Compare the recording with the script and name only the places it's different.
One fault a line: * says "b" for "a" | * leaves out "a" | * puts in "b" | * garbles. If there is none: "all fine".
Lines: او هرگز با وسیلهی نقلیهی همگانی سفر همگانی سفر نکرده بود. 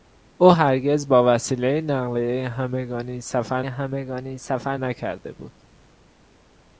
all fine